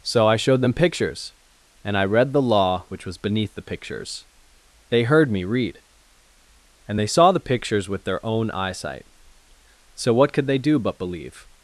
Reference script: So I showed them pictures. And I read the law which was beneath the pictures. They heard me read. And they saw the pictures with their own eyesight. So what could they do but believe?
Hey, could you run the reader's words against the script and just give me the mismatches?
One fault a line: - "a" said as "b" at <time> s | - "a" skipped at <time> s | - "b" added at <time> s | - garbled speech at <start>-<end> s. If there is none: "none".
none